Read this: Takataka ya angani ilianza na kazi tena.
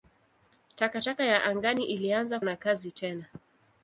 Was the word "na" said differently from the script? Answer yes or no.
no